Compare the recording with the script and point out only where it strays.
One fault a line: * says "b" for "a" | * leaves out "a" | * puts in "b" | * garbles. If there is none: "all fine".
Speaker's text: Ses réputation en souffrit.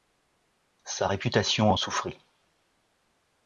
* says "Sa" for "Ses"